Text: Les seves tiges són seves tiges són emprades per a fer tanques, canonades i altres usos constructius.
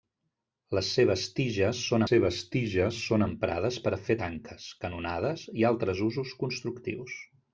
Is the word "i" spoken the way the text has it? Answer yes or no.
yes